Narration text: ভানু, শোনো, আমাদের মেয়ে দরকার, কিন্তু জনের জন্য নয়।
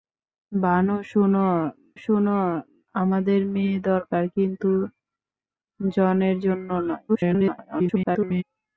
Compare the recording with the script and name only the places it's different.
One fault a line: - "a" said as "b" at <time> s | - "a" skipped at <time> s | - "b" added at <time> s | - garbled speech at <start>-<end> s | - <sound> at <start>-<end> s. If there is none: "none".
- "শোনো" added at 2.0 s
- garbled speech at 7.1-8.4 s